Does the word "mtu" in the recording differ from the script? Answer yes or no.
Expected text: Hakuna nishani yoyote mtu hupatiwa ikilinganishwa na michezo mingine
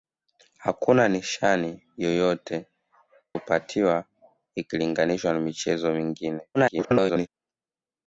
yes